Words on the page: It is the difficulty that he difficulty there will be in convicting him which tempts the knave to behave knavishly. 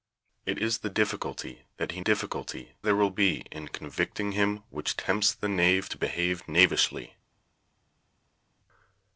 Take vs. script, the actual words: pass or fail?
pass